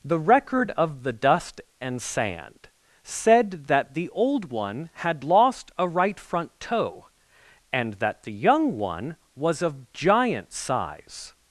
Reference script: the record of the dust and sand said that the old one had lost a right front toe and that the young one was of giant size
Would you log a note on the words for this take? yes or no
no